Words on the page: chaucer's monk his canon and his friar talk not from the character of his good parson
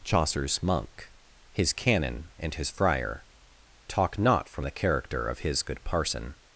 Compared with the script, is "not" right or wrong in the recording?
right